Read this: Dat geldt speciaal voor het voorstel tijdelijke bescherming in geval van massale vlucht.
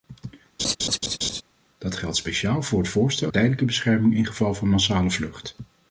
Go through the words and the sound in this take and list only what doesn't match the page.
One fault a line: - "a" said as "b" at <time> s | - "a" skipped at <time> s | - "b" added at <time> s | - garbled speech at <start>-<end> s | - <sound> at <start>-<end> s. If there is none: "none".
- laugh at 0.6-1.4 s